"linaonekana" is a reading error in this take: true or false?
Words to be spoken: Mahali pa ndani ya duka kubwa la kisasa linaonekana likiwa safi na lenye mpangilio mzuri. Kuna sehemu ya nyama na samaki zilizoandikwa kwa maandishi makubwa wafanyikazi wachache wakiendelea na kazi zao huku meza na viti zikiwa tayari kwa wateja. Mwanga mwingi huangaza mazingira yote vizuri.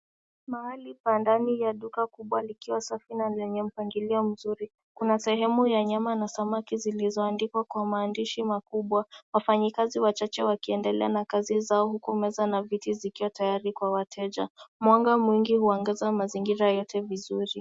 true